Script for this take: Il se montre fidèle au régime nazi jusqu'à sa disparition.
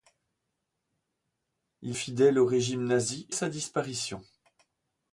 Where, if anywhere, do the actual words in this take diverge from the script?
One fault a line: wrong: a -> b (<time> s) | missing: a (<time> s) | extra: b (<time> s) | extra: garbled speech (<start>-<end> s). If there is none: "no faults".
missing: se montre (1.9 s)
missing: jusqu'à (3.3 s)